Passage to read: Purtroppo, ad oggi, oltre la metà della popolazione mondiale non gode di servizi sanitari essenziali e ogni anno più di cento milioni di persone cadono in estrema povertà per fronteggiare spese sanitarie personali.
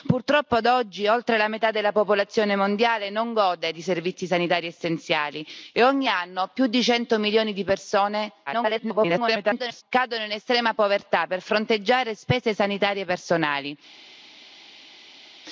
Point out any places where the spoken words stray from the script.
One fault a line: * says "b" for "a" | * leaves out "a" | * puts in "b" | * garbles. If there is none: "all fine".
* garbles